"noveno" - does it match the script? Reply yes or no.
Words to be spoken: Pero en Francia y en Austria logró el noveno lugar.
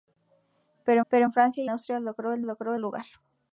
no